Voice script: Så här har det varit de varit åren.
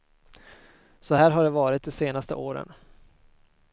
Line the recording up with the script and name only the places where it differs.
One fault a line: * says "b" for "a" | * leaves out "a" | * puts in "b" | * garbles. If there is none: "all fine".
* says "senaste" for "varit"